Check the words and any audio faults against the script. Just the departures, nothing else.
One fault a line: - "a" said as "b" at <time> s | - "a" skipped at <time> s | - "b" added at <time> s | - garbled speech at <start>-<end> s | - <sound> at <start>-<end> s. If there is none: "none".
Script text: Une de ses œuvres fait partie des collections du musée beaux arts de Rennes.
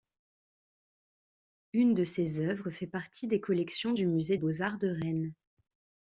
none